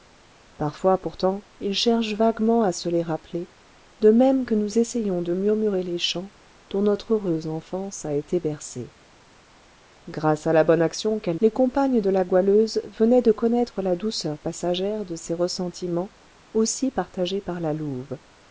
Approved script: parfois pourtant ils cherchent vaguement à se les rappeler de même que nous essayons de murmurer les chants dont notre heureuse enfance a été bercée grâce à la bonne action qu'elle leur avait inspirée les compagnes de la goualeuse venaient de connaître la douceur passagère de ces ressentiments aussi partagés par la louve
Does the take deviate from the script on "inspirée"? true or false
true